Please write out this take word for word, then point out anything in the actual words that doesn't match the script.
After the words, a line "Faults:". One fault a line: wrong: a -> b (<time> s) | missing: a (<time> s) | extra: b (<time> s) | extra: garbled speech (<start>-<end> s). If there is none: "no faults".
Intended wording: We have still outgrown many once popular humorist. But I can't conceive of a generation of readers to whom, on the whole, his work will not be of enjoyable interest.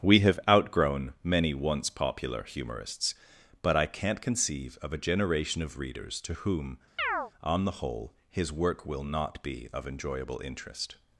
We have outgrown many once popular humorists. But I can't conceive of a generation of readers to whom, on the whole, his work will not be of enjoyable interest.
Faults:
missing: still (0.4 s)
wrong: humorist -> humorists (2.4 s)